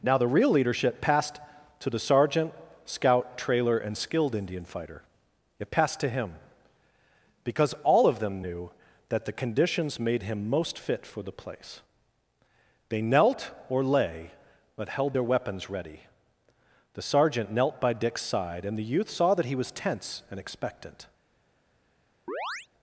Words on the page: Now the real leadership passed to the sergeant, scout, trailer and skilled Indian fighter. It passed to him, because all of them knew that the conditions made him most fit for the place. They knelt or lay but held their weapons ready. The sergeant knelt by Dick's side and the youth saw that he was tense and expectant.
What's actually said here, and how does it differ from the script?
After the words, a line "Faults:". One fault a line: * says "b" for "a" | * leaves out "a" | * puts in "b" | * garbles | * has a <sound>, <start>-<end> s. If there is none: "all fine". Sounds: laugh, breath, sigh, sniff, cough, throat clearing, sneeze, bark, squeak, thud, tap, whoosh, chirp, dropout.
Now the real leadership passed to the sergeant, scout, trailer and skilled Indian fighter. It passed to him, because all of them knew that the conditions made him most fit for the place. They knelt or lay but held their weapons ready. The sergeant knelt by Dick's side and the youth saw that he was tense and expectant.
Faults:
* has a chirp, 22.3-22.7 s